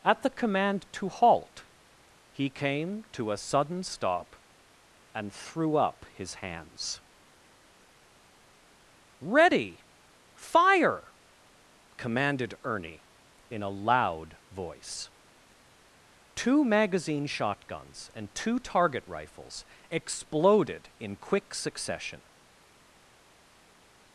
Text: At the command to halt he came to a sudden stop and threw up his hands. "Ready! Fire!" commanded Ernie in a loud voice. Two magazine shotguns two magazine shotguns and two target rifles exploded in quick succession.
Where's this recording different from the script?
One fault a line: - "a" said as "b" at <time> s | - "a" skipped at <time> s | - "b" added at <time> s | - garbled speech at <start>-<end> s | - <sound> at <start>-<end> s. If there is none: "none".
- "two magazine shotguns" skipped at 18.1 s